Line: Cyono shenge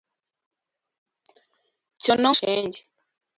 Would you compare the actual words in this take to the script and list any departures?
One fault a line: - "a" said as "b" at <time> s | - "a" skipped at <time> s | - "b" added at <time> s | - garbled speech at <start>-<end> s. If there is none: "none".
none